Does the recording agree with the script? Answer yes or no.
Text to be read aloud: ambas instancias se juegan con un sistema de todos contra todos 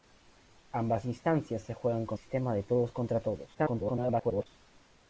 no